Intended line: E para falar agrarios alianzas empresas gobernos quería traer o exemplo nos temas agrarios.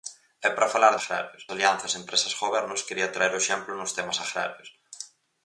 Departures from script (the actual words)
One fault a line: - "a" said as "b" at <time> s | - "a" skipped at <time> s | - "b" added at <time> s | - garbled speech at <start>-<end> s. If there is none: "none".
none